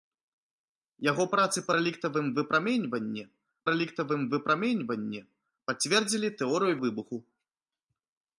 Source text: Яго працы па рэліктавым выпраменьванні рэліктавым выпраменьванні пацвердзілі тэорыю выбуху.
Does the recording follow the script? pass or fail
pass